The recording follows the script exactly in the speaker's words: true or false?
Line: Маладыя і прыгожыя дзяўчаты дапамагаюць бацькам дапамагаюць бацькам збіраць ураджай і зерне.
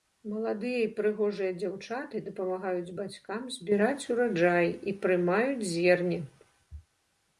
false